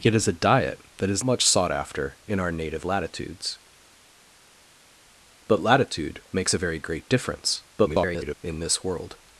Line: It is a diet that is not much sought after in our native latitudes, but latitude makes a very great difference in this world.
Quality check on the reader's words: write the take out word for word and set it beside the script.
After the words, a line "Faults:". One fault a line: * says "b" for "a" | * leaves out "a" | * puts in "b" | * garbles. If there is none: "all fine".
It is a diet that is much sought after in our native latitudes, but latitude makes a very great difference [garbled] in this world.
Faults:
* leaves out "not"
* garbles